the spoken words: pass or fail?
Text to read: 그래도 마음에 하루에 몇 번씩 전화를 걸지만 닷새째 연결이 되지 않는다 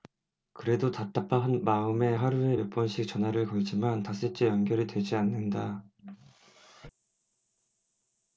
fail